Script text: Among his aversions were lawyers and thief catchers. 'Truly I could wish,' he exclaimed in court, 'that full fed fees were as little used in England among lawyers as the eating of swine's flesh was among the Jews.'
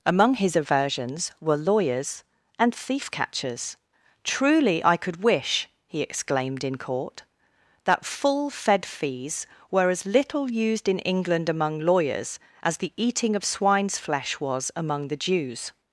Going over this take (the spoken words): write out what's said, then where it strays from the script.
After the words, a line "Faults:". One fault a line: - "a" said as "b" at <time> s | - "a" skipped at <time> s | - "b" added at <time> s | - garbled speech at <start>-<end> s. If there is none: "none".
Among his aversions were lawyers and thief catchers. 'Truly I could wish,' he exclaimed in court, 'that full fed fees were as little used in England among lawyers as the eating of swine's flesh was among the Jews.'
Faults:
none